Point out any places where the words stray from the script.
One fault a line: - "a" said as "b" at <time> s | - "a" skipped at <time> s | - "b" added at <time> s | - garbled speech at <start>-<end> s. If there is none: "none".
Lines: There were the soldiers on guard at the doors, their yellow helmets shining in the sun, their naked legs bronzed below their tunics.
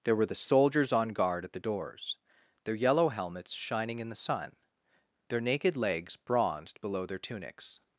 none